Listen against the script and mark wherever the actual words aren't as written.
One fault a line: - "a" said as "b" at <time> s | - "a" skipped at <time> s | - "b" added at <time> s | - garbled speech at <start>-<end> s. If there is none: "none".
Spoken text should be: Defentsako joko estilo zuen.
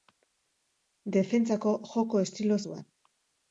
none